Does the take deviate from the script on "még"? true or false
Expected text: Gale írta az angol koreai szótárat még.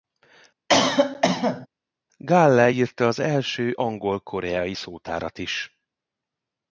true